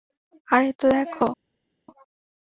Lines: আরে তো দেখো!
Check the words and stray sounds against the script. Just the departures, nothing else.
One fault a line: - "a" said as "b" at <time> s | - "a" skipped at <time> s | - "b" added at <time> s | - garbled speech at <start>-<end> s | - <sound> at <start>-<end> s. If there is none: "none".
none